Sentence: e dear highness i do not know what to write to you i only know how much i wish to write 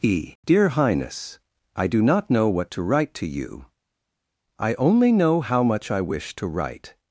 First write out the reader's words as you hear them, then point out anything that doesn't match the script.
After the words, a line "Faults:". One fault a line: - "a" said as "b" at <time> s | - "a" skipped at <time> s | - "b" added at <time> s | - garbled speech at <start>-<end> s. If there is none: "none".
e dear highness i do not know what to write to you i only know how much i wish to write
Faults:
none